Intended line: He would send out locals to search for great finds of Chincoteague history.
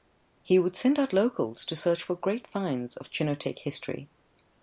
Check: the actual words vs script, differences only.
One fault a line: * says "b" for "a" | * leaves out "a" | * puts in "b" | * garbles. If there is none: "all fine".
all fine